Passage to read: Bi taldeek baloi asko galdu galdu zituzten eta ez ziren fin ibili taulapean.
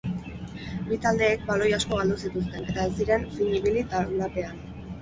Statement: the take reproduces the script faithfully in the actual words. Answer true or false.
false